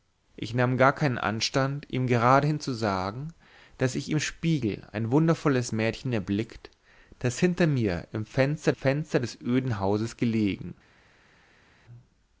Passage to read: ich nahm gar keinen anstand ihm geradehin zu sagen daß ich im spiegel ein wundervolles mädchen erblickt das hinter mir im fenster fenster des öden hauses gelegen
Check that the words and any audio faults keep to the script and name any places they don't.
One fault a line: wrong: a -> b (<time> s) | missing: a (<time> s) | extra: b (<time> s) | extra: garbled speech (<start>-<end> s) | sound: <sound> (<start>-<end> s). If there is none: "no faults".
no faults